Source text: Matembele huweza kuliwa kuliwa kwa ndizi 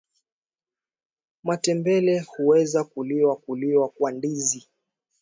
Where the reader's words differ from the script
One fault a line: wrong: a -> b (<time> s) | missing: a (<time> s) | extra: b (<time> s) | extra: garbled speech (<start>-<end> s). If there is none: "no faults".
no faults